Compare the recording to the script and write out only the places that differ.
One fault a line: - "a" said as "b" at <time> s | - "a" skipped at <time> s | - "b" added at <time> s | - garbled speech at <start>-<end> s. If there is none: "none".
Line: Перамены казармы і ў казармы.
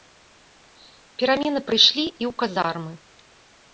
- "казармы" said as "прыйшлі" at 1.7 s